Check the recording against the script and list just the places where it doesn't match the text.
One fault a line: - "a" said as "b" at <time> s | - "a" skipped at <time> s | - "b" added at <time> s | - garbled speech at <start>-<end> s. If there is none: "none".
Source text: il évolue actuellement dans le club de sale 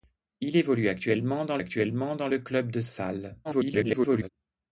- "actuellement dans" added at 1.6 s
- garbled speech at 3.4-4.3 s